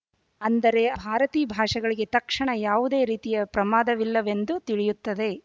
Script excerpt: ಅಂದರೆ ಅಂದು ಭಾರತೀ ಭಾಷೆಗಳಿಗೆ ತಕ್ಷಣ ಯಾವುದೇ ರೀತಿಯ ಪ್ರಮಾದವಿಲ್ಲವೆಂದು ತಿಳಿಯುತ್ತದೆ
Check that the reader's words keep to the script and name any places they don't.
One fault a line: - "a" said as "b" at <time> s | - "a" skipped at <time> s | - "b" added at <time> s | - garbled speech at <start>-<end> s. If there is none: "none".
- "ಅಂದು" skipped at 0.8 s